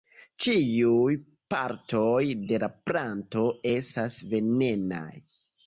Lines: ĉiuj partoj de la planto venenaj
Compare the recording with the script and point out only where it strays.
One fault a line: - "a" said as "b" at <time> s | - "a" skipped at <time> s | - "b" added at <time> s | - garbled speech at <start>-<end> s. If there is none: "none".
- "estas" added at 3.8 s